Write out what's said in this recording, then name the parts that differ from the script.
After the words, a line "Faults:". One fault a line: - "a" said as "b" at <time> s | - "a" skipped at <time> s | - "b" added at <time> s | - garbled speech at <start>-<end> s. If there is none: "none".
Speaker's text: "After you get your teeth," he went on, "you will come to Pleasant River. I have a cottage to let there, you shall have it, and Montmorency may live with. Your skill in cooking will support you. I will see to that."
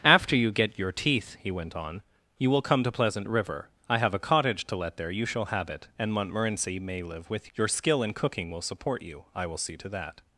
"After you get your teeth," he went on, "you will come to Pleasant River. I have a cottage to let there, you shall have it, and Montmorency may live with. Your skill in cooking will support you. I will see to that."
Faults:
none